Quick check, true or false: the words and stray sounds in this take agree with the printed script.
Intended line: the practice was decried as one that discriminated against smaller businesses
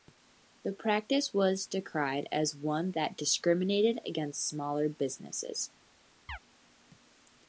false